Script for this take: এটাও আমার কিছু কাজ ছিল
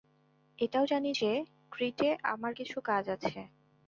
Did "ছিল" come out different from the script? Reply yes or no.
yes